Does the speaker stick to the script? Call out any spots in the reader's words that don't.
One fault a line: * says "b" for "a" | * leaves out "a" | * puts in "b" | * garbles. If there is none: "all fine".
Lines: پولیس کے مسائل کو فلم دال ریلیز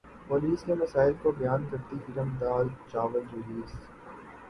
* puts in "بیان کرتی"
* puts in "چاول"